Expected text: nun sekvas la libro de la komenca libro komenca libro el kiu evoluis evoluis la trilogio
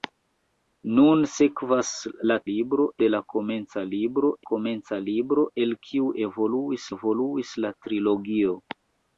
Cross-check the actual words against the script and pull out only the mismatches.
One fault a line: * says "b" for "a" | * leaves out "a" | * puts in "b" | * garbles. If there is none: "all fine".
all fine